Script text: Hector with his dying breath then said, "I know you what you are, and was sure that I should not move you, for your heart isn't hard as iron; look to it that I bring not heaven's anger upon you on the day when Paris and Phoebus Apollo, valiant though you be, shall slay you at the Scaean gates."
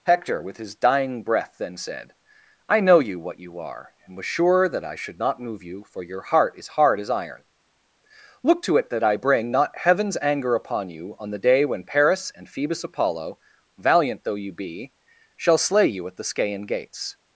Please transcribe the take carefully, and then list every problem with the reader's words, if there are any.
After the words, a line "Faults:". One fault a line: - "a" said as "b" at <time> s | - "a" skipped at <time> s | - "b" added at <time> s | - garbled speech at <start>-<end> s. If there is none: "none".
Hector with his dying breath then said, "I know you what you are, and was sure that I should not move you, for your heart is hard as iron; look to it that I bring not heaven's anger upon you on the day when Paris and Phoebus Apollo, valiant though you be, shall slay you at the Scaean gates."
Faults:
- "isn't" said as "is" at 6.6 s